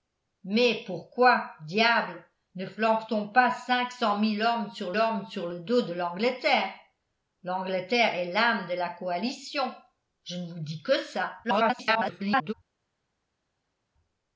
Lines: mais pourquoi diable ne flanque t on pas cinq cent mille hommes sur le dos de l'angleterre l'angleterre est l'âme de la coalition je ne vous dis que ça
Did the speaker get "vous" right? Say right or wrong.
right